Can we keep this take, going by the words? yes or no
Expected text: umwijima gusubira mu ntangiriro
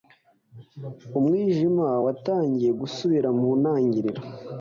no